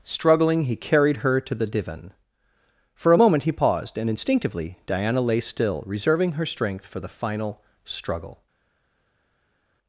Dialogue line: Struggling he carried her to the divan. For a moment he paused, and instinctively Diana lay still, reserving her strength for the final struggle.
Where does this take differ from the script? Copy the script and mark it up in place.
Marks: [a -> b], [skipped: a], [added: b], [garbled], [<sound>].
Struggling he carried her to the divan. For a moment he paused, and instinctively Diana lay still, reserving her strength for the final struggle.